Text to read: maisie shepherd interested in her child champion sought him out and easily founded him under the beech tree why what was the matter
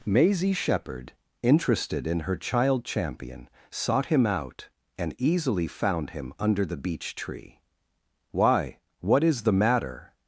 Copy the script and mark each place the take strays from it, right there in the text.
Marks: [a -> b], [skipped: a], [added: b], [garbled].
maisie shepherd interested in her child champion sought him out and easily [founded -> found] him under the beech tree why what [was -> is] the matter